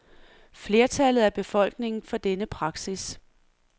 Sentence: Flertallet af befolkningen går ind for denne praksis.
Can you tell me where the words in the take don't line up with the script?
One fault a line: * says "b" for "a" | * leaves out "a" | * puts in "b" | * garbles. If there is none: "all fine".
* leaves out "går ind"